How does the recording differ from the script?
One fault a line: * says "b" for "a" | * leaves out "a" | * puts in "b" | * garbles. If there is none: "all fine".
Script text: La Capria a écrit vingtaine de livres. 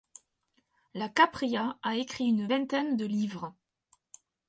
* puts in "une"